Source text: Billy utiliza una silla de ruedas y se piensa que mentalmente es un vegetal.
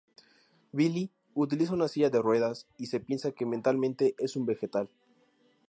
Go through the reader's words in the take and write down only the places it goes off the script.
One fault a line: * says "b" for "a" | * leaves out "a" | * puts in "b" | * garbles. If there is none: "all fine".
all fine